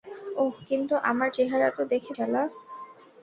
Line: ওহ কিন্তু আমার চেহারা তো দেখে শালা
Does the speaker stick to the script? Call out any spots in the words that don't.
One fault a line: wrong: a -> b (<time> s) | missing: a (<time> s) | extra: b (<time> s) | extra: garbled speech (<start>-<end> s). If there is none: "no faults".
no faults